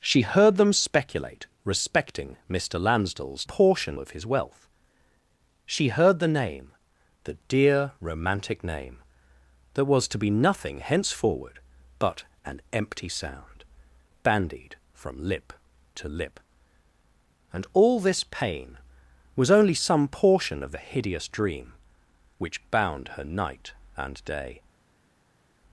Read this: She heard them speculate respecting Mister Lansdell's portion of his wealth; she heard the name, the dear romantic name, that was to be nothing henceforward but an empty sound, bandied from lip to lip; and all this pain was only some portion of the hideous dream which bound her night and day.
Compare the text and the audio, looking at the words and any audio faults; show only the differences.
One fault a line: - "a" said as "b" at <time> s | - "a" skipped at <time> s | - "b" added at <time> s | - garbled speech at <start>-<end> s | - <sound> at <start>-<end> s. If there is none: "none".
none